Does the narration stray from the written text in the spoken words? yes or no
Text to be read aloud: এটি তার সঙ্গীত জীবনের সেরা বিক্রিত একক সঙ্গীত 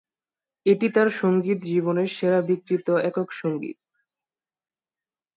no